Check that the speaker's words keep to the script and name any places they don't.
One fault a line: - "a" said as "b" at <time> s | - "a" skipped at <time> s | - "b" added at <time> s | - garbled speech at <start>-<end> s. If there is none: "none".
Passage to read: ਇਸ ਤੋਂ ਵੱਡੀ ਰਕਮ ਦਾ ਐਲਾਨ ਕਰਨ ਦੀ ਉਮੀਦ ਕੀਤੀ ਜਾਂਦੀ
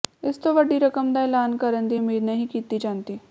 - "ਨਹੀਂ" added at 2.2 s